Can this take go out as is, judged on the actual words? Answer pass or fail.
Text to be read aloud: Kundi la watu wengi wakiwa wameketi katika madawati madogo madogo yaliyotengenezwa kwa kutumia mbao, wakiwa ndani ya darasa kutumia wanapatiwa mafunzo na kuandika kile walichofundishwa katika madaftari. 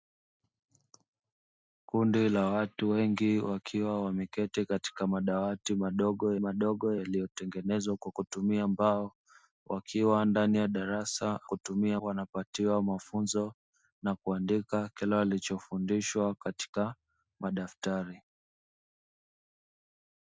pass